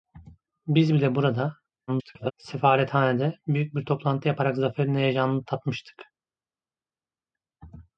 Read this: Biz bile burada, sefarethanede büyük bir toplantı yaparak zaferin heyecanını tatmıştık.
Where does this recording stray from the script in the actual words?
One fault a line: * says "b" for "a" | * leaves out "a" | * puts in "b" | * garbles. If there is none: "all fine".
* garbles